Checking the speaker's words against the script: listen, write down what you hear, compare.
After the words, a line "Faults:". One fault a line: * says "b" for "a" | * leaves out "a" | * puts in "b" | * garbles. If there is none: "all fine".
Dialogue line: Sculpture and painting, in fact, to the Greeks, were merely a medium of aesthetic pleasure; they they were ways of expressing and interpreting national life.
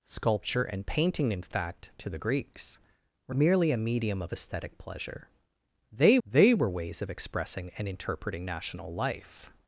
Sculpture and painting, in fact, to the Greeks, were merely a medium of aesthetic pleasure; they they were ways of expressing and interpreting national life.
Faults:
all fine